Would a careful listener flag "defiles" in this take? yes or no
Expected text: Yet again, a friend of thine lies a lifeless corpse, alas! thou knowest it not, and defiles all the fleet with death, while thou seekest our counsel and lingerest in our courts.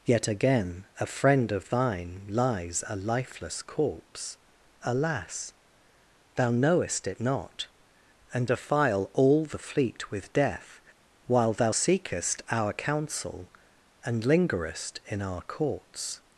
yes